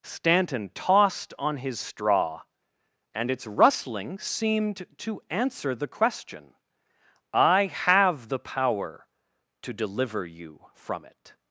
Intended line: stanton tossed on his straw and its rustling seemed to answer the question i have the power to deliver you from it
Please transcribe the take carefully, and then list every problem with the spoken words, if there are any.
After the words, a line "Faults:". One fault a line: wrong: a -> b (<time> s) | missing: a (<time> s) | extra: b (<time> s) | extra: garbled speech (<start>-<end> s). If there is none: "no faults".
stanton tossed on his straw and its rustling seemed to answer the question i have the power to deliver you from it
Faults:
no faults